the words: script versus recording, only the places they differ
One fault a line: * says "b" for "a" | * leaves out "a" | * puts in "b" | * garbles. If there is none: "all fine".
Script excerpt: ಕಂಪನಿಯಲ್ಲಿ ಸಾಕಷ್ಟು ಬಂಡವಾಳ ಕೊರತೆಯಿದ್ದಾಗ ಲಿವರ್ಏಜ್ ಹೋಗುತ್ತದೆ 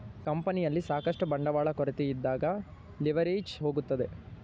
all fine